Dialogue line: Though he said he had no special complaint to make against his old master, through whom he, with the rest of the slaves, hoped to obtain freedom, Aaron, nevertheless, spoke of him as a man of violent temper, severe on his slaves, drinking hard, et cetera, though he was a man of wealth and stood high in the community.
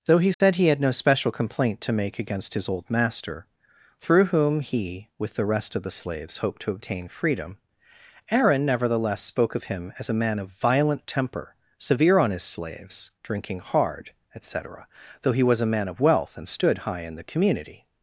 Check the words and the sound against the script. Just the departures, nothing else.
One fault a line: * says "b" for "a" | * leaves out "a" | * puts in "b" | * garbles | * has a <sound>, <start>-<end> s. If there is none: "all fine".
* has a dropout, 0.3-0.4 s